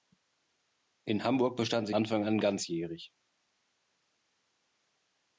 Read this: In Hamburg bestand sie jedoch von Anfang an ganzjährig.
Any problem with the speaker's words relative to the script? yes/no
yes